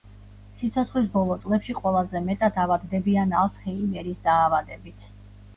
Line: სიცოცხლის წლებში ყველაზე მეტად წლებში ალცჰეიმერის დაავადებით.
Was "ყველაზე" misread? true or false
false